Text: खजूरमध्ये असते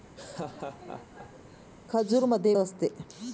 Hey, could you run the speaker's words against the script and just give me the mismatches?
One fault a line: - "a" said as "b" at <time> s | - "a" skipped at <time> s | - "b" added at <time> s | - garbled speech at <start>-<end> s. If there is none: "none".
none